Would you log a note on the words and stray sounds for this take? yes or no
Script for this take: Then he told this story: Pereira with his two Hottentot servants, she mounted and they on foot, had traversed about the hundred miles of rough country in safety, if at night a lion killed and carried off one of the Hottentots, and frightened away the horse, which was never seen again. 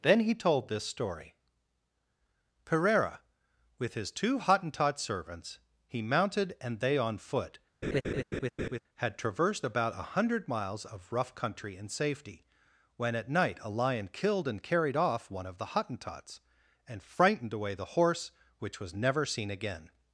yes